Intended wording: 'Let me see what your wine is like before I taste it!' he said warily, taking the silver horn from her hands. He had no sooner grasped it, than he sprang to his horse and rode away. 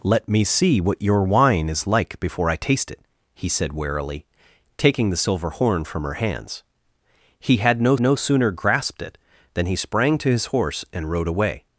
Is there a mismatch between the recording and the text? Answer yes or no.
yes